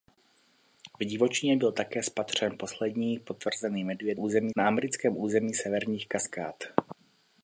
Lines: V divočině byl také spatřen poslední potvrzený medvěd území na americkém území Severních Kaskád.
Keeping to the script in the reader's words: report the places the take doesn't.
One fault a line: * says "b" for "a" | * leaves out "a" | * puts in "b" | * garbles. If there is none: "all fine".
all fine